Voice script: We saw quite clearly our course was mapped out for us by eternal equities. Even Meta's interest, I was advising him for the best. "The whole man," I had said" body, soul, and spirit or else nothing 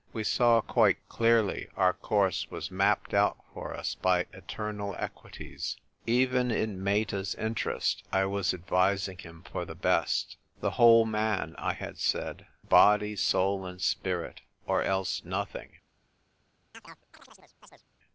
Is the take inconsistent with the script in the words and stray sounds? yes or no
yes